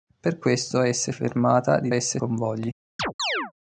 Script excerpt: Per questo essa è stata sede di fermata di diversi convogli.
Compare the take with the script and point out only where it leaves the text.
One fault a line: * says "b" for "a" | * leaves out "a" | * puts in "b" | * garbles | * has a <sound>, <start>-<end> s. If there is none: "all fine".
* leaves out "stata sede di"
* says "essa" for "diversi"
* has a chirp, 3.0-3.5 s